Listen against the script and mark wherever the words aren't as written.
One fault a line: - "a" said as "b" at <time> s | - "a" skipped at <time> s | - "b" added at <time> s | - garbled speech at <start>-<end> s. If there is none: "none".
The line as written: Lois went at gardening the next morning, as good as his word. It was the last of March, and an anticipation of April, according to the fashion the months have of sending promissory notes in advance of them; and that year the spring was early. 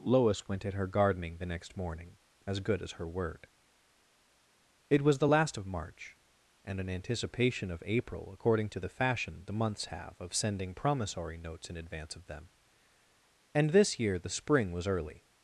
- "her" added at 0.7 s
- "his" said as "her" at 2.9 s
- "that" said as "this" at 13.7 s